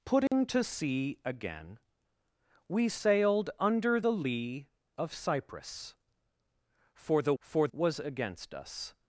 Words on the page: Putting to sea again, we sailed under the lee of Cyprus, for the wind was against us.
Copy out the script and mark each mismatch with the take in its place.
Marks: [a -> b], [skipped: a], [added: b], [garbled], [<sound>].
Putting [dropout] to sea again, we sailed under the lee of Cyprus, for the [wind -> for] was against us.